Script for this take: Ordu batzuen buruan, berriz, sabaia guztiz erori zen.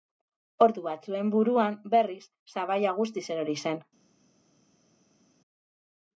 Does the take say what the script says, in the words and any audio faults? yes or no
yes